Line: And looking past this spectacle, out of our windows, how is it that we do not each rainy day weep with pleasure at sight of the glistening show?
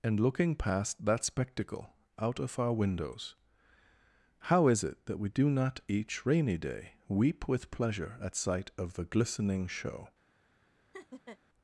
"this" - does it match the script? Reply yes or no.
no